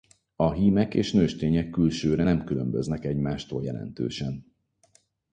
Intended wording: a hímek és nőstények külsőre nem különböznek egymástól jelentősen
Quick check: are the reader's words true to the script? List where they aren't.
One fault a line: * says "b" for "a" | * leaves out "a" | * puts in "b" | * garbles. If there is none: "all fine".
all fine